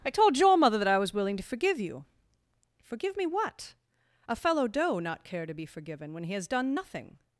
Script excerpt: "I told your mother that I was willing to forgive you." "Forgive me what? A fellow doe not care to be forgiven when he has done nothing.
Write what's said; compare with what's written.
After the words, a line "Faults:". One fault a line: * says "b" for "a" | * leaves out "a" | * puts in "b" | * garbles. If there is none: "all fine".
"I told your mother that I was willing to forgive you." "Forgive me what? A fellow doe not care to be forgiven when he has done nothing.
Faults:
all fine